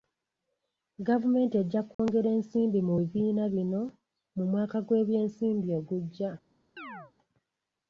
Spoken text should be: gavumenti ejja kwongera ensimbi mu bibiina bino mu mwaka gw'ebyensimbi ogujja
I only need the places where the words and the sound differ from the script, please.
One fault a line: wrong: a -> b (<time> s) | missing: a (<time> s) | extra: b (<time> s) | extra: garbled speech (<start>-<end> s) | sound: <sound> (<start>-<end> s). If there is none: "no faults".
sound: dropout (1.9-2.0 s)
sound: chirp (6.8-7.1 s)